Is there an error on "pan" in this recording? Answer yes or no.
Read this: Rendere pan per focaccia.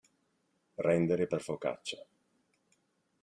yes